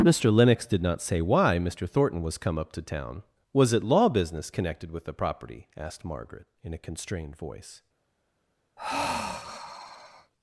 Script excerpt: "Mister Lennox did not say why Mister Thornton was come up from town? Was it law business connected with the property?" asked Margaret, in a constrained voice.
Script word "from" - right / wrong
wrong